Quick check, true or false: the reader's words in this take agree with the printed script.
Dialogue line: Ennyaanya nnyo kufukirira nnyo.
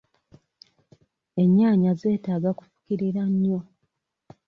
false